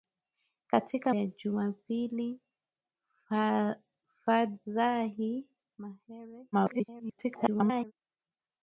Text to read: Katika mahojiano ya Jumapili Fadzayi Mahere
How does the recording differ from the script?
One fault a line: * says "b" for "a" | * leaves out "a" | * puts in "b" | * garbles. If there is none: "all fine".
* leaves out "mahojiano"
* garbles